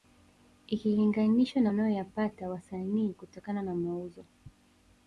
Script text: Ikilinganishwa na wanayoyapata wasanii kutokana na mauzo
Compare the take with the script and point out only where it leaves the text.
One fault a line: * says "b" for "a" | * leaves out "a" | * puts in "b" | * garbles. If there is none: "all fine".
all fine